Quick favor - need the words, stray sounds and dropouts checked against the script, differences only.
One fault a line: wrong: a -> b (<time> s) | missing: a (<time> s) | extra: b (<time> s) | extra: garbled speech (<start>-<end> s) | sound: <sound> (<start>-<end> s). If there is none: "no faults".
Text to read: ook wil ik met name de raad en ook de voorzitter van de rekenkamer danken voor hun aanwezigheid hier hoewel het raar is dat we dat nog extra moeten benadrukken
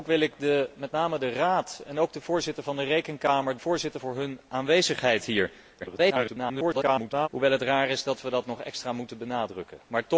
wrong: danken -> voorzitter (3.6 s)
extra: garbled speech (5.8-7.3 s)